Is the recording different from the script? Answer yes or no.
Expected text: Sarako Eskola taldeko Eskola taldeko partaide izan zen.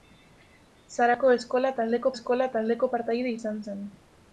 no